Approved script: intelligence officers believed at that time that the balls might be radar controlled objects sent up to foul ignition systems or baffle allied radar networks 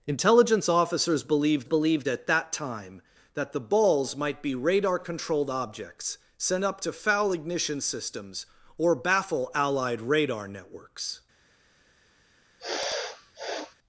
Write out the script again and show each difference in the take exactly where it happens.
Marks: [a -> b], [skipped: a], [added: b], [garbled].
intelligence officers believed [added: believed] at that time that the balls might be radar controlled objects sent up to foul ignition systems or baffle allied radar networks